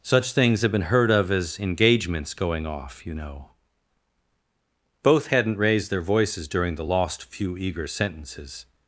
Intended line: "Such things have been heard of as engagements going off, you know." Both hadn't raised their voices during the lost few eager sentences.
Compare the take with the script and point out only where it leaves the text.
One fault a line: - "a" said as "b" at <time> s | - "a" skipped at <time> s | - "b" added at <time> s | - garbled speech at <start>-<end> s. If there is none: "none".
none